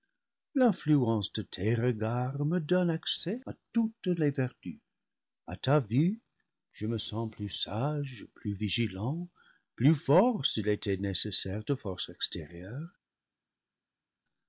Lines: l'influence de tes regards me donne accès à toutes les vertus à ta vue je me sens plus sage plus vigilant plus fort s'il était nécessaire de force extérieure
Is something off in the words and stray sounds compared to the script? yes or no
no